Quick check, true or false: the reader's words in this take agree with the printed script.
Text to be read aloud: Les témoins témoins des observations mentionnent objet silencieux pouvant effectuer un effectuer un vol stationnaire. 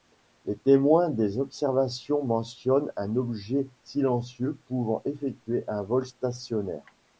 false